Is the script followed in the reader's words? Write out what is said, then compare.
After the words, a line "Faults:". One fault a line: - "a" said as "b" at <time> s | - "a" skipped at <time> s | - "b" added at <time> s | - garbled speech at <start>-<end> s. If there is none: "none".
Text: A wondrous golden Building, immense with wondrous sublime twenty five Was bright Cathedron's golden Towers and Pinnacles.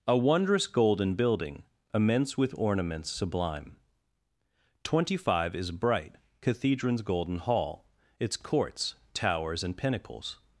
A wondrous golden Building, immense with ornaments sublime twenty five Is bright Cathedron's golden Hall, its Courts, Towers and Pinnacles.
Faults:
- "wondrous" said as "ornaments" at 2.6 s
- "Was" said as "Is" at 5.5 s
- "Hall its Courts" added at 7.4 s